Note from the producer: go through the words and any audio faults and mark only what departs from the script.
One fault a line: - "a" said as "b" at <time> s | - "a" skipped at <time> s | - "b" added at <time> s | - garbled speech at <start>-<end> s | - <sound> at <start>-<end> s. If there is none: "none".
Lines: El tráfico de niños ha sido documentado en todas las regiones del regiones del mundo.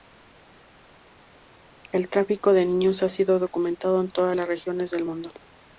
- "regiones del" skipped at 5.1 s